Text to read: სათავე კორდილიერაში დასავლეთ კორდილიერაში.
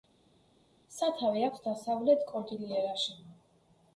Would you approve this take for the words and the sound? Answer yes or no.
no